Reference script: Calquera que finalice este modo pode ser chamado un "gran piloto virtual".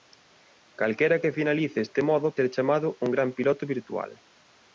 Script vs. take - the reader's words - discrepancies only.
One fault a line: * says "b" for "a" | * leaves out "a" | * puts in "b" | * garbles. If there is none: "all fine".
* leaves out "pode"